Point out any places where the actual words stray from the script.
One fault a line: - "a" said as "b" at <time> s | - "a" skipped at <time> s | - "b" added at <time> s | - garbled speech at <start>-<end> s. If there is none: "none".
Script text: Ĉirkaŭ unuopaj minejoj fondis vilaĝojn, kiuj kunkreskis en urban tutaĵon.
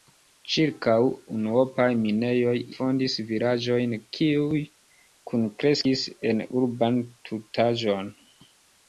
none